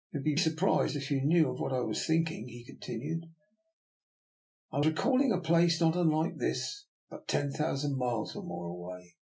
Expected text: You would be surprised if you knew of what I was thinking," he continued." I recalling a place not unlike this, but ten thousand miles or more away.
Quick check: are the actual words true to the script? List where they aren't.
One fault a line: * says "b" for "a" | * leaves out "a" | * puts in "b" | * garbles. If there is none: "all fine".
all fine